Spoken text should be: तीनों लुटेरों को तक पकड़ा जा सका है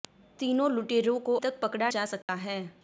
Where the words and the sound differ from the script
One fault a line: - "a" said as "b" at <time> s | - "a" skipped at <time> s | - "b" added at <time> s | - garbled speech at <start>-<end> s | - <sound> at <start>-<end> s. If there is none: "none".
- dropout at 2.2-2.3 s